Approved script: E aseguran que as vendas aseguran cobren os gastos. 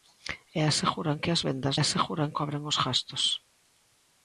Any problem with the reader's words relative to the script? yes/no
no